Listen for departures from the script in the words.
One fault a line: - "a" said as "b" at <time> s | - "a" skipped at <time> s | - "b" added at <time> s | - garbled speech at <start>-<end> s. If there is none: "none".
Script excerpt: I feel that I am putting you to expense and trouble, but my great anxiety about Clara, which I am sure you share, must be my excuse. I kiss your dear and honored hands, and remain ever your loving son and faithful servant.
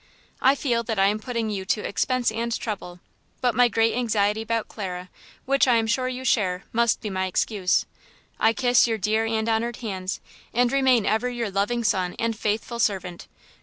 none